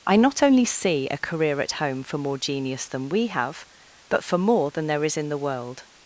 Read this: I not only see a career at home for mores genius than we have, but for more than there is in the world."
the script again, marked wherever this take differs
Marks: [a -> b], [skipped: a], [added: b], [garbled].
I not only see a career at home for [mores -> more] genius than we have, but for more than there is in the world."